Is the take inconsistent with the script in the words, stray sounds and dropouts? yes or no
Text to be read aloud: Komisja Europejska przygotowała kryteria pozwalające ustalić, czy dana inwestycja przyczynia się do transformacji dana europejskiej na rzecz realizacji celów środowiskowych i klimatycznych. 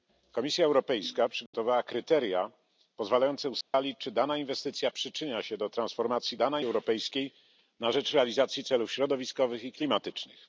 yes